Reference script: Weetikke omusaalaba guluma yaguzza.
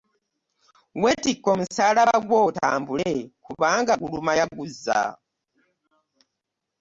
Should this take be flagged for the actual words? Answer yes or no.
yes